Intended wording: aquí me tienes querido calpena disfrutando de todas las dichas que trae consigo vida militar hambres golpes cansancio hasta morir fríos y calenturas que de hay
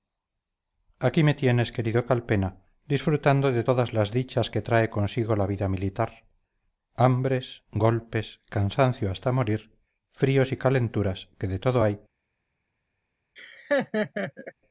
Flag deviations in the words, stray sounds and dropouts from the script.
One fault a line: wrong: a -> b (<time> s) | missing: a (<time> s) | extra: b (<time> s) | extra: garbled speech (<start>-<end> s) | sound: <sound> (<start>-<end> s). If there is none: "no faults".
extra: la (5.4 s)
extra: todo (11.6 s)
sound: laugh (13.4-14.5 s)